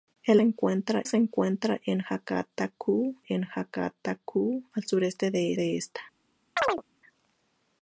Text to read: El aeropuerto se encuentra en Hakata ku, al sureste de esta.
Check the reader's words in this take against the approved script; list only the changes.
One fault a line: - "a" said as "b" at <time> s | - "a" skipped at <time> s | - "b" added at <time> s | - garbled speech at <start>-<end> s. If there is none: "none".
- "aeropuerto" said as "encuentra" at 0.4 s
- "en Hakata ku" added at 3.3 s
- "de" added at 5.5 s